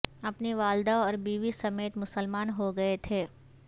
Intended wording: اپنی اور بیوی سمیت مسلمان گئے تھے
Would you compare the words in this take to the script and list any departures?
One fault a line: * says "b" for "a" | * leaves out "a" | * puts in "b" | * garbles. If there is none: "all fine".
* puts in "والدہ"
* puts in "ہو"